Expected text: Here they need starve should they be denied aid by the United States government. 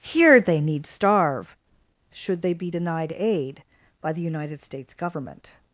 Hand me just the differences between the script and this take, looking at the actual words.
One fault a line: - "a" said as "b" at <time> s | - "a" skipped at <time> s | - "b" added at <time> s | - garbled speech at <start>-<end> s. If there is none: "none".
none